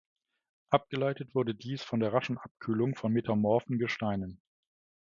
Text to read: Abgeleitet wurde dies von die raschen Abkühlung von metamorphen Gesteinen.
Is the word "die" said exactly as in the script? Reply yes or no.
no